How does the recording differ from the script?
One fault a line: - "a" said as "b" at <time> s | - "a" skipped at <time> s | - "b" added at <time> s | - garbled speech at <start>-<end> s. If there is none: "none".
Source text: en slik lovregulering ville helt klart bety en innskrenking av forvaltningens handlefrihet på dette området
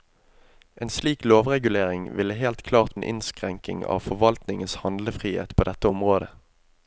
- "bety" skipped at 3.0 s